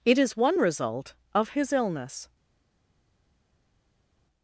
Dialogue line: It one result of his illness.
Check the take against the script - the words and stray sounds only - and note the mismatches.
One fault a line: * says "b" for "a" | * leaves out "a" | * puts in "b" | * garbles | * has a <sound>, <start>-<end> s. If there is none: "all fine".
* puts in "is"